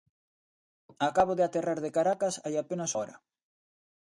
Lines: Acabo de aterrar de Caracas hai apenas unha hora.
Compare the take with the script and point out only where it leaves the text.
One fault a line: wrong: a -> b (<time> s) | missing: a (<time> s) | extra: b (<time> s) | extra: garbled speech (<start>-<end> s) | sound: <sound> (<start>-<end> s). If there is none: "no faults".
missing: unha (2.9 s)